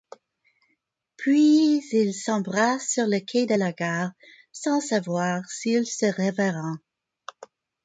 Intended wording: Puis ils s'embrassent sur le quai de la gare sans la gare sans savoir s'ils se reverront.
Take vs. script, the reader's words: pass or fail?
fail